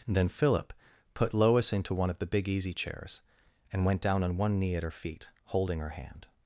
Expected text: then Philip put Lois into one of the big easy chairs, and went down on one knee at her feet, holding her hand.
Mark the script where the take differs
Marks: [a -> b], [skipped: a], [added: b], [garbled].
then Philip put Lois into one of the big easy chairs, and went down on one knee at her feet, holding her hand.